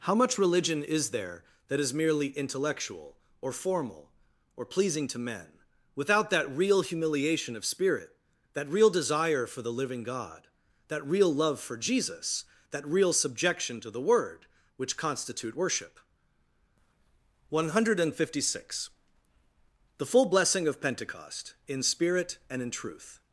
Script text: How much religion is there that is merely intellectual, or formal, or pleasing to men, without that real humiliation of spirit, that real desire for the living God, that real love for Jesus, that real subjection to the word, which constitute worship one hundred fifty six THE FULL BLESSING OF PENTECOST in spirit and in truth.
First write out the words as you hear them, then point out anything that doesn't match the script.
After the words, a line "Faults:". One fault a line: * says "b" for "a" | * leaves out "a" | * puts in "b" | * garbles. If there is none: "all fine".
How much religion is there that is merely intellectual, or formal, or pleasing to men, without that real humiliation of spirit, that real desire for the living God, that real love for Jesus, that real subjection to the word, which constitute worship one hundred fifty six THE FULL BLESSING OF PENTECOST in spirit and in truth.
Faults:
all fine